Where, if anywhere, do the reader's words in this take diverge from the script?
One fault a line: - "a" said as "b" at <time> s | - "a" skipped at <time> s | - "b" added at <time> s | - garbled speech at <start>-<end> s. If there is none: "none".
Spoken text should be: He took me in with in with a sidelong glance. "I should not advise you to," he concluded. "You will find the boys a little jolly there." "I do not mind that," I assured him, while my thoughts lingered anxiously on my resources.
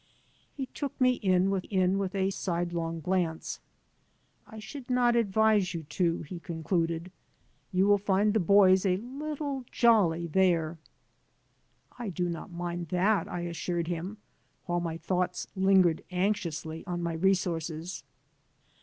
none